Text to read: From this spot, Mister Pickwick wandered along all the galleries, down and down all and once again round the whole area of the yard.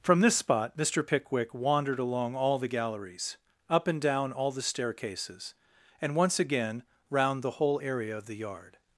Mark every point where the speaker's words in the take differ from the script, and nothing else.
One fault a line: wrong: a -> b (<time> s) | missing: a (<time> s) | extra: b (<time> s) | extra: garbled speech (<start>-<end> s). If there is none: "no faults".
wrong: down -> up (3.7 s)
extra: the staircases (4.5 s)